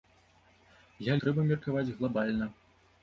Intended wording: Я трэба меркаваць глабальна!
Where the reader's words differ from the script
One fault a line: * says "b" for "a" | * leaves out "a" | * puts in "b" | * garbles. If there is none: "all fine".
all fine